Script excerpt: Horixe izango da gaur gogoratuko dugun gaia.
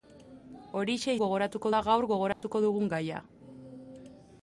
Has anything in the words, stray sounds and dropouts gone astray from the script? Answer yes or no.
yes